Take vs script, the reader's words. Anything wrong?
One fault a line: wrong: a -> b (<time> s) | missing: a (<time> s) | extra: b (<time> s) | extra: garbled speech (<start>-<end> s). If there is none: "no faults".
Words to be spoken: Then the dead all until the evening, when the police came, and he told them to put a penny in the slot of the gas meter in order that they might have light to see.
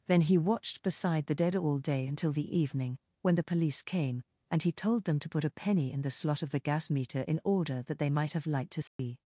extra: he watched beside (0.2 s)
extra: day (1.8 s)